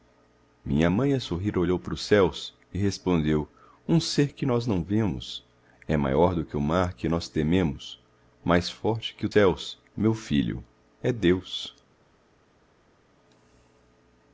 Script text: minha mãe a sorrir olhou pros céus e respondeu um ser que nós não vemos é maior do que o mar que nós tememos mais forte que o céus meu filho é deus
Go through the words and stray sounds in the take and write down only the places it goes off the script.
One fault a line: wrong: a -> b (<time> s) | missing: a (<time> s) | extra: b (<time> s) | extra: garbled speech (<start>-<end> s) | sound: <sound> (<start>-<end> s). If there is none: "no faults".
no faults